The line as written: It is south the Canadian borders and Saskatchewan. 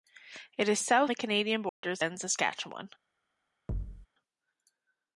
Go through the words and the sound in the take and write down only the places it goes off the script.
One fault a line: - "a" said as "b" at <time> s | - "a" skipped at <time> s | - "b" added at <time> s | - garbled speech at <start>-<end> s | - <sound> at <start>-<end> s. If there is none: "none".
- dropout at 1.7-1.8 s
- thud at 3.7-4.1 s